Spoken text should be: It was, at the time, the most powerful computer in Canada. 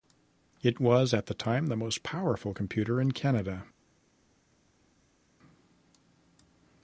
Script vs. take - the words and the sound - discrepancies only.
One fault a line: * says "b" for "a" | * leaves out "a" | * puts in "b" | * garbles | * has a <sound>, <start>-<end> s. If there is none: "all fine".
all fine